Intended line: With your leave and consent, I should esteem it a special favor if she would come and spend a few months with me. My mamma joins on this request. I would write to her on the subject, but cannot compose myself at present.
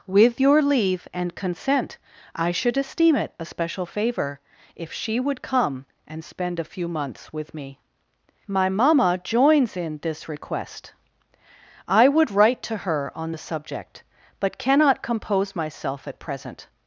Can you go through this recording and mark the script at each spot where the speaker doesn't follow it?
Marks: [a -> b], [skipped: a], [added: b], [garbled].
With your leave and consent, I should esteem it a special favor if she would come and spend a few months with me. My mamma joins [on -> in] this request. I would write to her on the subject, but cannot compose myself at present.